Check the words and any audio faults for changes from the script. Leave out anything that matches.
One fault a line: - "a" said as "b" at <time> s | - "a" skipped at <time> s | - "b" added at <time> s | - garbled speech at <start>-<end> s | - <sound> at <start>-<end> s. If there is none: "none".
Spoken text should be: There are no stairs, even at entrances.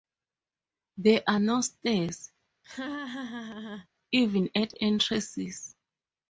- laugh at 2.6-3.9 s